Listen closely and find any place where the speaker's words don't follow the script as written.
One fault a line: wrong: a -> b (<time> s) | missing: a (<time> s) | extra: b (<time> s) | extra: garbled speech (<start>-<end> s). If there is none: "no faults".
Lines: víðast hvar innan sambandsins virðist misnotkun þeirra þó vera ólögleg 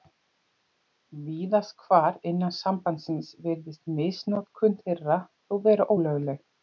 no faults